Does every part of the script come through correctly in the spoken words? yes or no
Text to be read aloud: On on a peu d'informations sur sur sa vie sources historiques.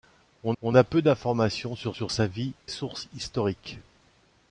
yes